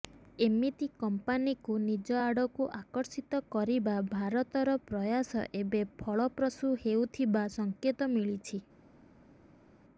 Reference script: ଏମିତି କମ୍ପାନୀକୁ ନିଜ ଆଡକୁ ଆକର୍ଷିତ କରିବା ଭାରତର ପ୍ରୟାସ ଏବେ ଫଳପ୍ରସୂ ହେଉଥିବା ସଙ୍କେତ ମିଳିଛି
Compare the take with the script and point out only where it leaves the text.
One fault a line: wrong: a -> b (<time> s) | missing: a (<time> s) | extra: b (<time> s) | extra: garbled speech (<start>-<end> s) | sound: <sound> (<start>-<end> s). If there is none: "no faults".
no faults